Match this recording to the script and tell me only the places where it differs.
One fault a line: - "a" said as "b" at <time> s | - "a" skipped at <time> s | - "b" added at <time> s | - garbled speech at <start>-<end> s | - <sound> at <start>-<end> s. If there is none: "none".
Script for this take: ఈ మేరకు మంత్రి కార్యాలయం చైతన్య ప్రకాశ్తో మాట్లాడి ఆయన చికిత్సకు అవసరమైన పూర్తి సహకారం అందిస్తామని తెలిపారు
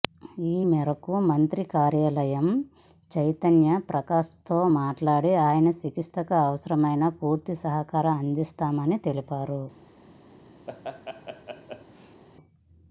- laugh at 10.7-12.2 s